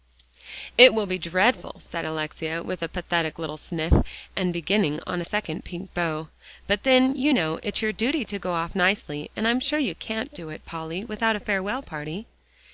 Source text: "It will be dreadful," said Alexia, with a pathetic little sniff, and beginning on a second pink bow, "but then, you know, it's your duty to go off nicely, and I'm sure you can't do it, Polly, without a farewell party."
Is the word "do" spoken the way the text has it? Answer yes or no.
yes